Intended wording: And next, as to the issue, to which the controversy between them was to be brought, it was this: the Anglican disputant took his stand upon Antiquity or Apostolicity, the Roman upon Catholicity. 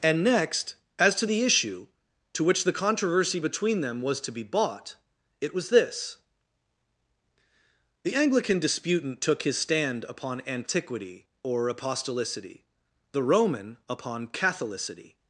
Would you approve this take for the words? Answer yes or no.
no